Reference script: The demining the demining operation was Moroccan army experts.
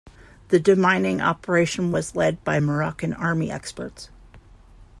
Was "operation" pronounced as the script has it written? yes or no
no